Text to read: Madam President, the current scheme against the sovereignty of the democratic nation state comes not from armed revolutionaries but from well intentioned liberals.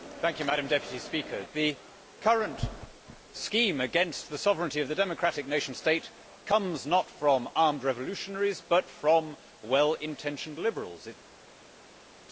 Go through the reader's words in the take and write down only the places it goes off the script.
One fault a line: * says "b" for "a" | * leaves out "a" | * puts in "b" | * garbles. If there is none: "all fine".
all fine